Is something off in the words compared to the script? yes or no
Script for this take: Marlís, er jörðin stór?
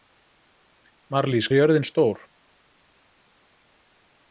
no